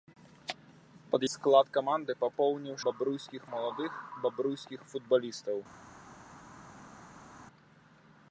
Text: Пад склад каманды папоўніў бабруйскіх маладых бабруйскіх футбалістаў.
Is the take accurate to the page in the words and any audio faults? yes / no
yes